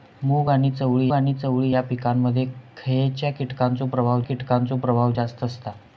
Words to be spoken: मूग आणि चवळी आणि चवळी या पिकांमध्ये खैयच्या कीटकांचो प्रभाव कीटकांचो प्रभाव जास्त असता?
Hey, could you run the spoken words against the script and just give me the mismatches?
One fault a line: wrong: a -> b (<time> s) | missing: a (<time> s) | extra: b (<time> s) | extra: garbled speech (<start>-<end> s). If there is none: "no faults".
no faults